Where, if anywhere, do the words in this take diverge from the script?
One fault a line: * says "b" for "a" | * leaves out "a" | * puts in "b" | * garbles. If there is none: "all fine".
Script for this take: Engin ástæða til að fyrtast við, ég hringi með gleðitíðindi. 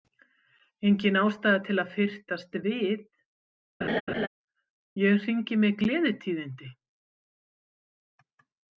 all fine